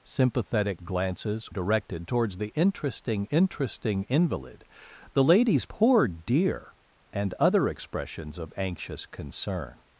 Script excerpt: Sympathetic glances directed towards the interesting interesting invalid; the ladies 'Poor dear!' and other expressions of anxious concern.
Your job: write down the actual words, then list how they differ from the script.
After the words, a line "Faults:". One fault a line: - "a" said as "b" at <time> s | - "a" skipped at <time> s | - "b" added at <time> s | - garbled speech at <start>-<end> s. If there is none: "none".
Sympathetic glances directed towards the interesting interesting invalid; the ladies 'Poor dear!' and other expressions of anxious concern.
Faults:
none